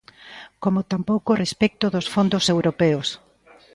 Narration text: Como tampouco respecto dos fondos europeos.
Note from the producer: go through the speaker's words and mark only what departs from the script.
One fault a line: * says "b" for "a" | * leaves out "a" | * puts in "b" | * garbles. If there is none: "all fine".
all fine